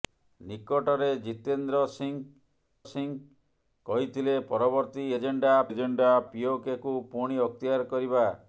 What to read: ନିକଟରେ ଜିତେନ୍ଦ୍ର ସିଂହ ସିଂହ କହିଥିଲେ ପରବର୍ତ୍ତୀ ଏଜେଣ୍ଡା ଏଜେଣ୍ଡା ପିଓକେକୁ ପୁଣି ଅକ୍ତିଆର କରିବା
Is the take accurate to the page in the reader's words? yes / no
yes